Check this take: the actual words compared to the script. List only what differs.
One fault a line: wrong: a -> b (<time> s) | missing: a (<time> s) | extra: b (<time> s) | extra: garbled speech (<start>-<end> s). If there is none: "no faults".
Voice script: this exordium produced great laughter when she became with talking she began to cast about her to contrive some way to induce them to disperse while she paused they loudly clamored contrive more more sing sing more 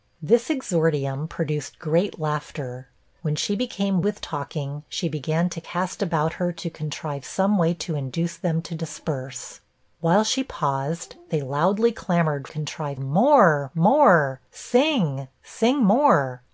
no faults